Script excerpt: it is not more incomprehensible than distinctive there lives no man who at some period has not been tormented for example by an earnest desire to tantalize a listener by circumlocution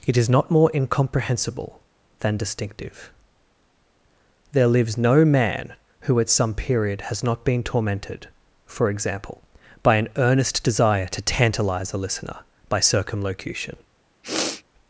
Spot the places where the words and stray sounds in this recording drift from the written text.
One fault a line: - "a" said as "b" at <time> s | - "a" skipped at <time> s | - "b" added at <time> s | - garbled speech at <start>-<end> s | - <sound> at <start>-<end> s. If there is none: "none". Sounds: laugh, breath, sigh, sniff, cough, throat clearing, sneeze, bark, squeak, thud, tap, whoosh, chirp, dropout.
- sniff at 14.2-14.6 s